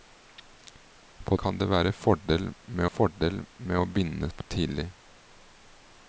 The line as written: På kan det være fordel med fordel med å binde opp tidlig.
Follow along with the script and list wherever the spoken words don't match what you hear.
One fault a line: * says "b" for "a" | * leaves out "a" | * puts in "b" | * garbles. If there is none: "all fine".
all fine